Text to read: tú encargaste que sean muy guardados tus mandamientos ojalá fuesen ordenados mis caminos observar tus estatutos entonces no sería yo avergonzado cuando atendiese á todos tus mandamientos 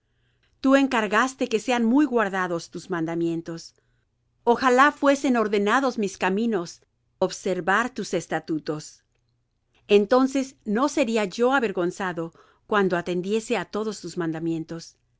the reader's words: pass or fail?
pass